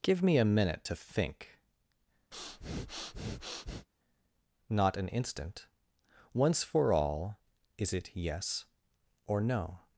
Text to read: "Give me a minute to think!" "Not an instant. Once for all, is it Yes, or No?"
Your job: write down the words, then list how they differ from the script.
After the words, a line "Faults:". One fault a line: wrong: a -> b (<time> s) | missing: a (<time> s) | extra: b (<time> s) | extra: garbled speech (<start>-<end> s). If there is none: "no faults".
"Give me a minute to think!" "Not an instant. Once for all, is it Yes, or No?"
Faults:
no faults